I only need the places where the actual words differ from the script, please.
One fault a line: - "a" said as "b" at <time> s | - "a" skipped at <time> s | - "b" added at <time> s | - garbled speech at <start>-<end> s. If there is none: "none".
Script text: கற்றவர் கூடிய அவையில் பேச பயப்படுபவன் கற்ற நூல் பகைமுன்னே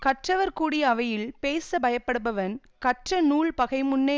none